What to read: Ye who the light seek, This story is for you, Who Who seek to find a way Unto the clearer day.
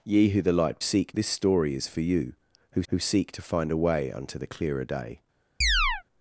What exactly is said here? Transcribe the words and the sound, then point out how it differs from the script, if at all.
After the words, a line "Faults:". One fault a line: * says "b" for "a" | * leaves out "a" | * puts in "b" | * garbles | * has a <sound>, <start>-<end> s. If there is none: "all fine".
Ye who the light seek, This story is for you, Who Who seek to find a way Unto the clearer day.
Faults:
* has a chirp, 5.6-6.0 s